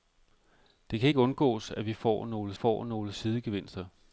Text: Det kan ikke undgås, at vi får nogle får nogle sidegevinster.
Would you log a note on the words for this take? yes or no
no